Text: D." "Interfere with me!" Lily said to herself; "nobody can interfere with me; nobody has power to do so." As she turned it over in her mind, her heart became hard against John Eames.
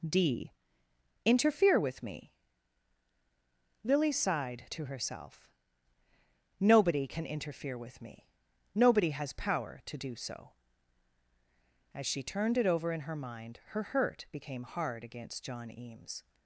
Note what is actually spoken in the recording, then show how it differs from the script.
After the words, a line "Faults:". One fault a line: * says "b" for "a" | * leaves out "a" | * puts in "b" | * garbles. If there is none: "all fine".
D." "Interfere with me!" Lily sighed to herself; "nobody can interfere with me; nobody has power to do so." As she turned it over in her mind, her hurt became hard against John Eames.
Faults:
* says "sighed" for "said"
* says "hurt" for "heart"